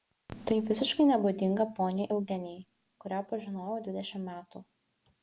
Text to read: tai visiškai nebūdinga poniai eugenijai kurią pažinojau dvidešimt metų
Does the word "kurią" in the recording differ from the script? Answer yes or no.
no